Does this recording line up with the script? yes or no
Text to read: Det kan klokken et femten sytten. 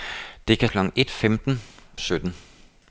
yes